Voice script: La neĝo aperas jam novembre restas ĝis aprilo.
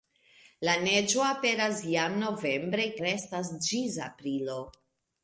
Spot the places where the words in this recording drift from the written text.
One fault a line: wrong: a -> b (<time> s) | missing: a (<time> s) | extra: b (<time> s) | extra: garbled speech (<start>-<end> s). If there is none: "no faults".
no faults